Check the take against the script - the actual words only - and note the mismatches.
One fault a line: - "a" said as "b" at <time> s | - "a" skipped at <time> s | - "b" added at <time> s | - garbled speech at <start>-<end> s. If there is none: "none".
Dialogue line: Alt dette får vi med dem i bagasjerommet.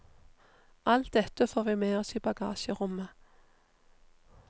- "dem" said as "oss" at 2.0 s